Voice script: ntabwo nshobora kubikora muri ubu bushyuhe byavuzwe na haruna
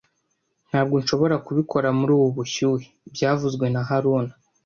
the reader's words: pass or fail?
pass